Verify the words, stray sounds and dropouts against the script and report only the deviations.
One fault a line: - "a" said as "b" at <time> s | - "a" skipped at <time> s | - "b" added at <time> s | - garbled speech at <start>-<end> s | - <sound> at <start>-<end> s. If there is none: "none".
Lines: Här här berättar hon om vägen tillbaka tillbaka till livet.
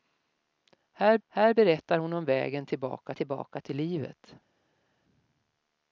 none